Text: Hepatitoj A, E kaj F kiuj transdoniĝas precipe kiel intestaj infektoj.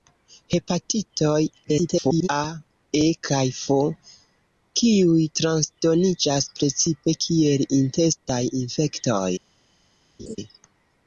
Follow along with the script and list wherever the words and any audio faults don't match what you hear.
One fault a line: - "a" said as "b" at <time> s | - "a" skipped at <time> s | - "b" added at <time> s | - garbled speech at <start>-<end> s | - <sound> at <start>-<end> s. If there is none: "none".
- garbled speech at 1.6-2.3 s
- laugh at 10.2-10.4 s